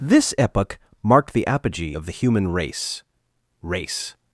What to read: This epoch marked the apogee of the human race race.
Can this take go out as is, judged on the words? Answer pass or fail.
pass